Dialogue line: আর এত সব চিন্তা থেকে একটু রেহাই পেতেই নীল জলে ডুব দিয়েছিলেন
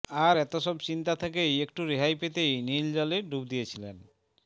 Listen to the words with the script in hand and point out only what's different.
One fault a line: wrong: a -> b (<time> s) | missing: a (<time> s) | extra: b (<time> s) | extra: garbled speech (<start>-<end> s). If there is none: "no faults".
no faults